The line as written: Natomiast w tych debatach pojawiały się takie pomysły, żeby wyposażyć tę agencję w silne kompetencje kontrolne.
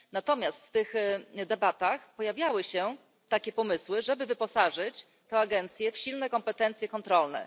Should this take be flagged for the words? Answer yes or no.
no